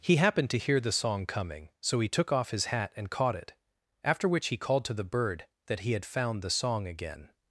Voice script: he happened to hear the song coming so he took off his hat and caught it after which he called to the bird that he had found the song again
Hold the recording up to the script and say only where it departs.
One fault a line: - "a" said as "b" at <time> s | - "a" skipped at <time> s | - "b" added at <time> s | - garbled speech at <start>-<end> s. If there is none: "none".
none